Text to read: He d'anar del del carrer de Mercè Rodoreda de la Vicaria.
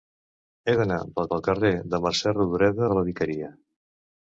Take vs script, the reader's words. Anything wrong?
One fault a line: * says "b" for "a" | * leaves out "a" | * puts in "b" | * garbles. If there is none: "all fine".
all fine